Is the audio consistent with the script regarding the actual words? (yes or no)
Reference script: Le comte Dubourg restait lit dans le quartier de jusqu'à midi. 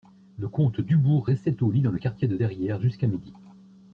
no